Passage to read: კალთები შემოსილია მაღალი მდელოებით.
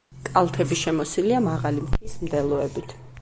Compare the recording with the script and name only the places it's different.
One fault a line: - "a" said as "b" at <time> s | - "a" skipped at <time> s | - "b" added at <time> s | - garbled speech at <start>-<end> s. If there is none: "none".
- "მთის" added at 1.9 s